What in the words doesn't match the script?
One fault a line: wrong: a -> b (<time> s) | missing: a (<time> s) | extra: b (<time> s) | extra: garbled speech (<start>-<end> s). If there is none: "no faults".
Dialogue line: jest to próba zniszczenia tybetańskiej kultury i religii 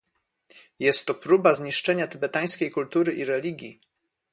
no faults